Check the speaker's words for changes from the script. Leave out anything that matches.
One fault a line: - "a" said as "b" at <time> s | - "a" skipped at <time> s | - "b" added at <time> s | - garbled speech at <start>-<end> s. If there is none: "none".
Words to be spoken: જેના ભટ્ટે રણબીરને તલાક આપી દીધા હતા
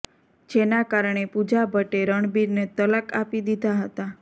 - "કારણે પૂજા" added at 0.9 s